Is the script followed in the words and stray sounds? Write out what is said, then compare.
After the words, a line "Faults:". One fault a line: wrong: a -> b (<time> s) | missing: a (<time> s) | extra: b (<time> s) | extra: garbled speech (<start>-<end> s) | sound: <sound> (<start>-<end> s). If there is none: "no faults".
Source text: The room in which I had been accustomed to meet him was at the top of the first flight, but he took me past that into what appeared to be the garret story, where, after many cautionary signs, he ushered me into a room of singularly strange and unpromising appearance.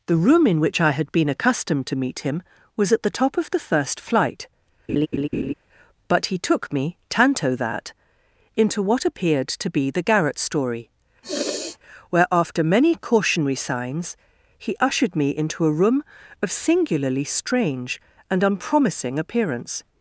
The room in which I had been accustomed to meet him was at the top of the first flight, but he took me tanto that into what appeared to be the garret story, where, after many cautionary signs, he ushered me into a room of singularly strange and unpromising appearance.
Faults:
sound: laugh (4.9-5.5 s)
wrong: past -> tanto (7.1 s)
sound: sniff (11.2-11.8 s)